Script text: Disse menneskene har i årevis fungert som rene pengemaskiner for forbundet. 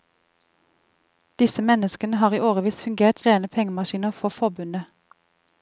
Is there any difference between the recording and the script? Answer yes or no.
yes